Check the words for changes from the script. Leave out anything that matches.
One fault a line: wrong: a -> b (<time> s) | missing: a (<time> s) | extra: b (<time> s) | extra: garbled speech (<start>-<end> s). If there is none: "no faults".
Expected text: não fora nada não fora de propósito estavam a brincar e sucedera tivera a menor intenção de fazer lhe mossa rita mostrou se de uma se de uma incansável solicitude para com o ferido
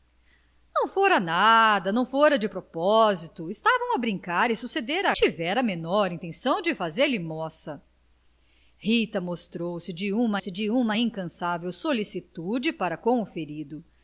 no faults